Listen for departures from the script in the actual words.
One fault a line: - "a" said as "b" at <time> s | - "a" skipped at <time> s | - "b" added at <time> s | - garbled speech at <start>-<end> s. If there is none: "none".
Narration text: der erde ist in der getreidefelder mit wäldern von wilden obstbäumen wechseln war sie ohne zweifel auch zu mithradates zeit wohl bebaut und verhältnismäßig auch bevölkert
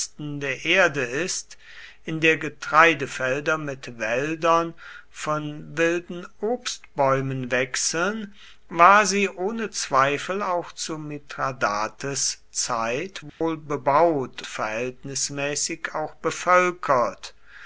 - "und" skipped at 14.4 s